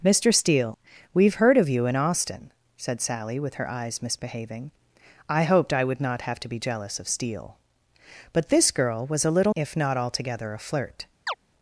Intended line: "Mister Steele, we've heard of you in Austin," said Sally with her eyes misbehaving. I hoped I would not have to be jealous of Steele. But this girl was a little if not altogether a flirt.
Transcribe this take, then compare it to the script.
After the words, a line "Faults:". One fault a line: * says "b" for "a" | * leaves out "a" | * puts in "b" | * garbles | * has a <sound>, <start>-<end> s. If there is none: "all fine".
"Mister Steele, we've heard of you in Austin," said Sally with her eyes misbehaving. I hoped I would not have to be jealous of Steele. But this girl was a little if not altogether a flirt.
Faults:
* has a chirp, 11.3-11.3 s